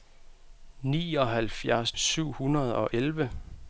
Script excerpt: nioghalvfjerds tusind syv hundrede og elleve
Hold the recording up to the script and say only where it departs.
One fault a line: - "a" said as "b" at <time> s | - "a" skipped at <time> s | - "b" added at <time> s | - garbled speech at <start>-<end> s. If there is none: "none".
- "tusind" skipped at 1.9 s